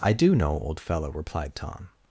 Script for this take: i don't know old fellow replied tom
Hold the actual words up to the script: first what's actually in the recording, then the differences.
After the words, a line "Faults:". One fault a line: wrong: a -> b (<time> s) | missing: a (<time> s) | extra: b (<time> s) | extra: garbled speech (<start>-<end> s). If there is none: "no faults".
i do know old fellow replied tom
Faults:
wrong: don't -> do (0.1 s)